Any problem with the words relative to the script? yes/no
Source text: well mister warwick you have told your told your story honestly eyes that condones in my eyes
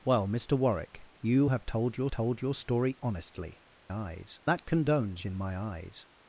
no